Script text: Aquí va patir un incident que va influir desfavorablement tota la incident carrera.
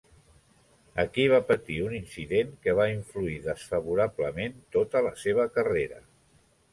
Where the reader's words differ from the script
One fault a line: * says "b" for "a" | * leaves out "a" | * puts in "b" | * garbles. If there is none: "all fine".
* says "seva" for "incident"